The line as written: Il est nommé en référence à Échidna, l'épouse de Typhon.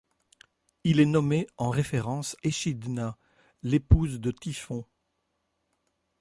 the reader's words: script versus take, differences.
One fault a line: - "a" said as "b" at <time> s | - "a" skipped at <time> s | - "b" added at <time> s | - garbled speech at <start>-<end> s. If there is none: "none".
- "à" skipped at 2.4 s